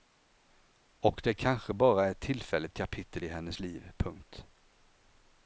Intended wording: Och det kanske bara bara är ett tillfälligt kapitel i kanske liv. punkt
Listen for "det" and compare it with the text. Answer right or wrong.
right